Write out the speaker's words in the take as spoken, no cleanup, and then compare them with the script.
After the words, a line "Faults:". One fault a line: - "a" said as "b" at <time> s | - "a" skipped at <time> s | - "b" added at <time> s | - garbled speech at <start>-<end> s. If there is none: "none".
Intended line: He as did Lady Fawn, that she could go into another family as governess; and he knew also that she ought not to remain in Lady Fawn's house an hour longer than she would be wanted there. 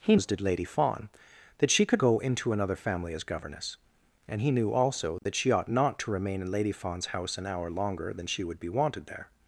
He as did Lady Fawn, that she could go into another family as governess; and he knew also that she ought not to remain in Lady Fawn's house an hour longer than she would be wanted there.
Faults:
none